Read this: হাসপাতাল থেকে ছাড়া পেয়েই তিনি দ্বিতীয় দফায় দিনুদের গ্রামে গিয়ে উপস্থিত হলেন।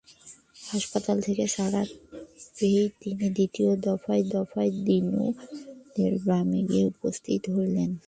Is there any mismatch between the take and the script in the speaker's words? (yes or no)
yes